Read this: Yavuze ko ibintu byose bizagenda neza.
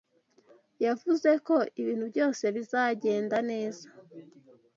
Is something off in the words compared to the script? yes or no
no